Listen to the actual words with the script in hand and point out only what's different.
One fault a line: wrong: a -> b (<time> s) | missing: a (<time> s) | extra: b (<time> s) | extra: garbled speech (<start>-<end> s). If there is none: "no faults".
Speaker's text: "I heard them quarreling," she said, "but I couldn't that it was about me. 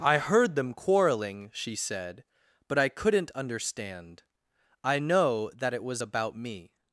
extra: understand I know (3.4 s)